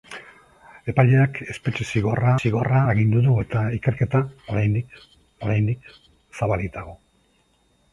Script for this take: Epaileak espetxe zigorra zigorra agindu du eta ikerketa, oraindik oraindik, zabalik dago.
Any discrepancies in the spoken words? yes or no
no